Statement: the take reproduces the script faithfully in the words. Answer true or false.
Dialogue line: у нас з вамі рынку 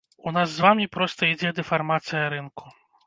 false